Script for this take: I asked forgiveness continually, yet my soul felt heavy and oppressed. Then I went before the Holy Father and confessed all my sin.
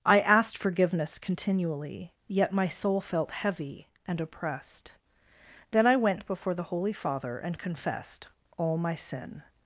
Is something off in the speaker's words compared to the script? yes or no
no